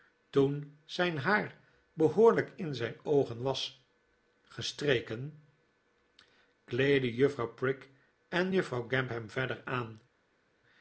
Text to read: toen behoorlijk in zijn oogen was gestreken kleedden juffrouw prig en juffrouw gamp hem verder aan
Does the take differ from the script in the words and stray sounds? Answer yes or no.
yes